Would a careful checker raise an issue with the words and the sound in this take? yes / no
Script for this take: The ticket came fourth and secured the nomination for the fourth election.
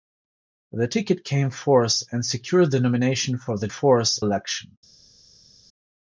no